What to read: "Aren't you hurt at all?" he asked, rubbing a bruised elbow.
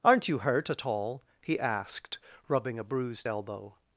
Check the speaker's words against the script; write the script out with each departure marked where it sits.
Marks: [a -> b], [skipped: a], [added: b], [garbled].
"Aren't you hurt at all?" he asked, rubbing a bruised elbow.